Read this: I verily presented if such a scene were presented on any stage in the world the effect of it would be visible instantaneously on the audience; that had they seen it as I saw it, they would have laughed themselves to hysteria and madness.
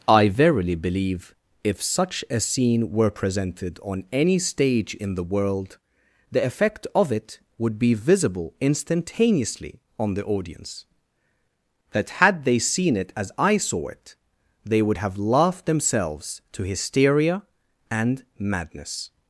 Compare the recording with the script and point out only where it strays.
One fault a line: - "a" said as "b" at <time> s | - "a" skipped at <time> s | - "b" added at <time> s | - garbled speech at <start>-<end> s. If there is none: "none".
- "presented" said as "believe" at 0.8 s